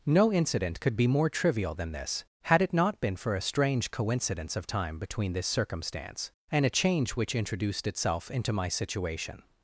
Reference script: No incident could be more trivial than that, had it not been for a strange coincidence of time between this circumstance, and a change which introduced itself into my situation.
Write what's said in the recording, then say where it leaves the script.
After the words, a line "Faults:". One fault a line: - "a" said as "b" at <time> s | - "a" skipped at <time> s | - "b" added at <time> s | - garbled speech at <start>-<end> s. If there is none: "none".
No incident could be more trivial than this, had it not been for a strange coincidence of time between this circumstance, and a change which introduced itself into my situation.
Faults:
- "that" said as "this" at 1.9 s